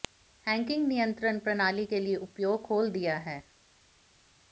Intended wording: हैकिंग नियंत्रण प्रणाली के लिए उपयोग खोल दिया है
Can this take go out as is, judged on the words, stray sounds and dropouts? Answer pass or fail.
pass